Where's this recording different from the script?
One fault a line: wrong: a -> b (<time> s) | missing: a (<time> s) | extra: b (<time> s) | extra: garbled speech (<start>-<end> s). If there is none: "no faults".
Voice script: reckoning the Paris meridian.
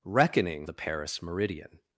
no faults